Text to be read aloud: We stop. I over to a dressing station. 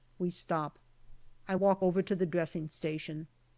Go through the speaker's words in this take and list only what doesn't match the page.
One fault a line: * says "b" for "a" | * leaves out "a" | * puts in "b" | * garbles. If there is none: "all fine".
* puts in "walk"
* says "the" for "a"